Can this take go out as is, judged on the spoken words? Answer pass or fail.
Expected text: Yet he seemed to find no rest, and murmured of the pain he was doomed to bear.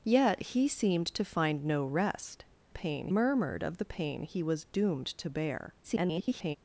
fail